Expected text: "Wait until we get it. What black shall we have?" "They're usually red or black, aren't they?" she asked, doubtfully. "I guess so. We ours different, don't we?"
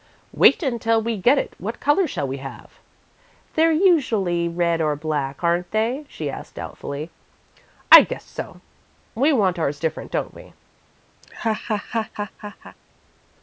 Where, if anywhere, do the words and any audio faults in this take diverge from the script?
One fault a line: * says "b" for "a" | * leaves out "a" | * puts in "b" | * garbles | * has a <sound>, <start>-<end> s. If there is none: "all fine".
* says "colour" for "black"
* puts in "want"
* has a laugh, 11.2-12.8 s